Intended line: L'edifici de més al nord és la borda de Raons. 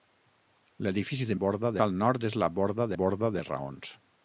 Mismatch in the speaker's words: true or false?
true